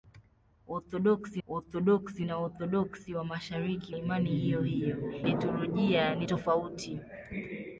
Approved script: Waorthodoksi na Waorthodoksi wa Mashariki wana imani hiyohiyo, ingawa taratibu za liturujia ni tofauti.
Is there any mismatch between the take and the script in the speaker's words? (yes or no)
yes